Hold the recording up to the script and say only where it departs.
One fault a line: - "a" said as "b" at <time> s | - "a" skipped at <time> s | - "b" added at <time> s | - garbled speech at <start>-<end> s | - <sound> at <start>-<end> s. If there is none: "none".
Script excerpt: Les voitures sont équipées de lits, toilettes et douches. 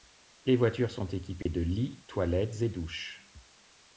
- dropout at 1.4-1.5 s